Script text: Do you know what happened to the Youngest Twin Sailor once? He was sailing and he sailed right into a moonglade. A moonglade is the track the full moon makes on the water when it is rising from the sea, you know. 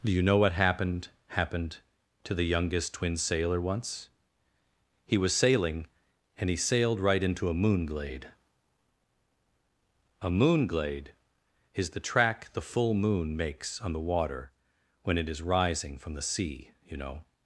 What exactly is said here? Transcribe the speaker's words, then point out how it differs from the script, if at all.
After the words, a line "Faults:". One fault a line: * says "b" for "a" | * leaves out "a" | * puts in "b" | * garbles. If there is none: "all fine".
Do you know what happened happened to the Youngest Twin Sailor once? He was sailing and he sailed right into a moonglade. A moonglade is the track the full moon makes on the water when it is rising from the sea, you know.
Faults:
* puts in "happened"